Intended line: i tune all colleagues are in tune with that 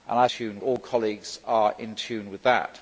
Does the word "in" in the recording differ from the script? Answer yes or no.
no